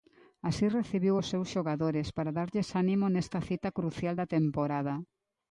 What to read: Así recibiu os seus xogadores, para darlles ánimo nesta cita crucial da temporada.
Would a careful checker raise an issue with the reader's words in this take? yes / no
no